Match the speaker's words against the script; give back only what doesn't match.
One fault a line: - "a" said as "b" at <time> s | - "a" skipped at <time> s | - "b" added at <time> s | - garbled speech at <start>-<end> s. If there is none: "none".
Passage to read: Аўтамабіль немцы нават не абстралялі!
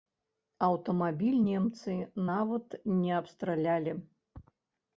none